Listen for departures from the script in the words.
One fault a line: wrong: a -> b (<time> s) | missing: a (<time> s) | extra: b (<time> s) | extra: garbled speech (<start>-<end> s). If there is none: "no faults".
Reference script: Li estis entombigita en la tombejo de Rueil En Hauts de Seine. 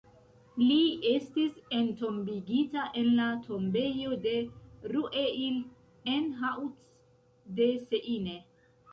no faults